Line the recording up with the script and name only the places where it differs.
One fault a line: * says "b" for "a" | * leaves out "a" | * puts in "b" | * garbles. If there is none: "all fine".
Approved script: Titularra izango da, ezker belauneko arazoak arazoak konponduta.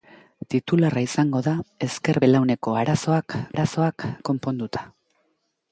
all fine